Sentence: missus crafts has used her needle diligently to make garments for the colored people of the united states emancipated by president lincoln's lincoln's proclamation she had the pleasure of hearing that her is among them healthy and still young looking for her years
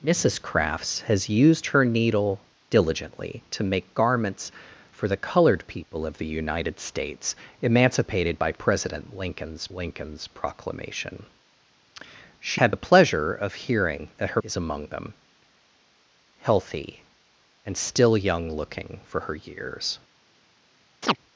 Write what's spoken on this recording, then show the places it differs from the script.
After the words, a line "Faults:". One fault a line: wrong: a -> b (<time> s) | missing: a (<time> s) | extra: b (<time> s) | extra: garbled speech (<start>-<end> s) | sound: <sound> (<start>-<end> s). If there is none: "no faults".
missus crafts has used her needle diligently to make garments for the colored people of the united states emancipated by president lincoln's lincoln's proclamation she had the pleasure of hearing that her is among them healthy and still young looking for her years
Faults:
sound: chirp (21.0-21.2 s)